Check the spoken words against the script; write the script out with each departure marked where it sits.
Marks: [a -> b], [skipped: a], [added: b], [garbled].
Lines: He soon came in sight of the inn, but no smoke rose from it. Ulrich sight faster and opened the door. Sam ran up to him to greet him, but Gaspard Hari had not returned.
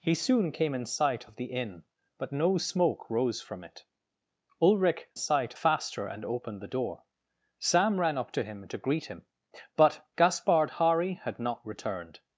He soon came in sight of the inn, but no smoke rose from it. Ulrich sight faster and opened the door. Sam ran up to him to greet him, but Gaspard Hari had not returned.